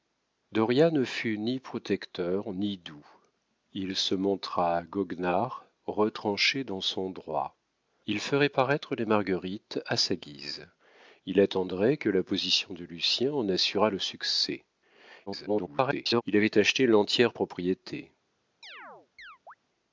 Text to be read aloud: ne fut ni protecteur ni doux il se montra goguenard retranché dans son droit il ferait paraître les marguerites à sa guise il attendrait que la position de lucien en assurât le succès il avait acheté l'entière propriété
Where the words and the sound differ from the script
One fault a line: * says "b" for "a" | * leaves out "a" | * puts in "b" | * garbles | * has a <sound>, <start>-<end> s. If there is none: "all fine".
* garbles
* has a chirp, 18.6-19.5 s